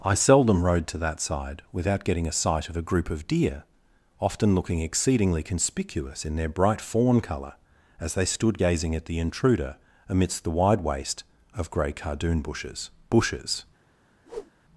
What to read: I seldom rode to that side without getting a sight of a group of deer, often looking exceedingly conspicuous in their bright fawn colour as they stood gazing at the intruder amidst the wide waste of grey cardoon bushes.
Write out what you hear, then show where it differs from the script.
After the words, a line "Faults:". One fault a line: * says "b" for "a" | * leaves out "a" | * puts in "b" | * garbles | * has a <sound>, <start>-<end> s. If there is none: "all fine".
I seldom rode to that side without getting a sight of a group of deer, often looking exceedingly conspicuous in their bright fawn colour as they stood gazing at the intruder amidst the wide waste of grey cardoon bushes bushes.
Faults:
* puts in "bushes"
* has a whoosh, 14.3-14.5 s